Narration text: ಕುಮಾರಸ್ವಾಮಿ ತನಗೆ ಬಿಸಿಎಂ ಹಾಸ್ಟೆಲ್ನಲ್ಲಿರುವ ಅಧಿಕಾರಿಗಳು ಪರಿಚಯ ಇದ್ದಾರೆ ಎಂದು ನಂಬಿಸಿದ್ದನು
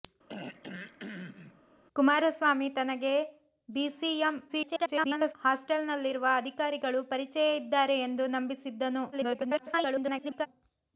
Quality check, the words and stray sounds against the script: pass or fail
fail